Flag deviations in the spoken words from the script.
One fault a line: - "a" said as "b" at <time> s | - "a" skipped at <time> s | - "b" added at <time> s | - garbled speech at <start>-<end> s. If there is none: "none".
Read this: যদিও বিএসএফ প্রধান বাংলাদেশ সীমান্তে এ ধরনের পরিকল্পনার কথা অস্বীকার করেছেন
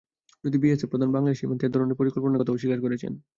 none